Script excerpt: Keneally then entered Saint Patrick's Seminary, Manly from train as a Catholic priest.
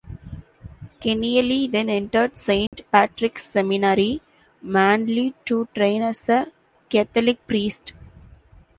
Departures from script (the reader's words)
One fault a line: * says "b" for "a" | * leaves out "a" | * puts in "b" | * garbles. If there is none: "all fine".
* says "to" for "from"